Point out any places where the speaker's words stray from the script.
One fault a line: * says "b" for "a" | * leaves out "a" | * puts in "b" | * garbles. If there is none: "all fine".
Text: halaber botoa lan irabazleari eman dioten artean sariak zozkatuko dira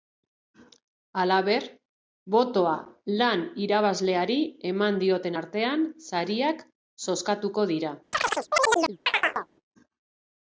all fine